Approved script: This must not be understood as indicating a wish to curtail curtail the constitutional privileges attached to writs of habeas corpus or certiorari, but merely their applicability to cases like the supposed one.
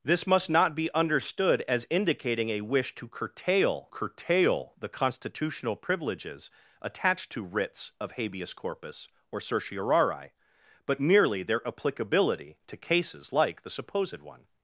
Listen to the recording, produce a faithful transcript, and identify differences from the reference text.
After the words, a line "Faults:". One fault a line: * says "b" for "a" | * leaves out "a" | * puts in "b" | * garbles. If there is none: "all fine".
This must not be understood as indicating a wish to curtail curtail the constitutional privileges attached to writs of habeas corpus or certiorari, but merely their applicability to cases like the supposed one.
Faults:
all fine